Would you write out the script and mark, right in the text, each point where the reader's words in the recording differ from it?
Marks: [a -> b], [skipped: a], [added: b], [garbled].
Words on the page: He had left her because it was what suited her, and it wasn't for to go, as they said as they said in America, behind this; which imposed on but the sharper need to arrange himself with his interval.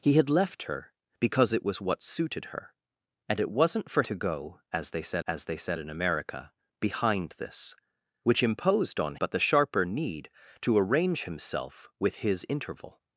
He had left her because it was what suited her, and it wasn't for to go, as they said as they said in America, behind this; which imposed on but the sharper need to arrange himself with his interval.